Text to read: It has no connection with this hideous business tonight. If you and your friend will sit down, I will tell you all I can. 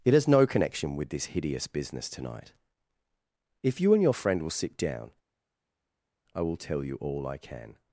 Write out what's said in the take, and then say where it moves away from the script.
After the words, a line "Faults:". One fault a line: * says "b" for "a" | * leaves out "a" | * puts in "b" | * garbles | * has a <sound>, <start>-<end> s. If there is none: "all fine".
It has no connection with this hideous business tonight. If you and your friend will sit down, I will tell you all I can.
Faults:
all fine